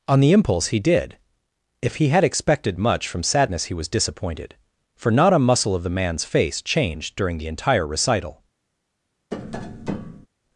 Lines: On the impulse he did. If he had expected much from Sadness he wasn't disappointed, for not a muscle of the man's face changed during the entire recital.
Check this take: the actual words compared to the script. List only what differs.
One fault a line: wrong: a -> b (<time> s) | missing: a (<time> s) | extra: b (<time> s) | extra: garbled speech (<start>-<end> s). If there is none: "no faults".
wrong: wasn't -> was (3.7 s)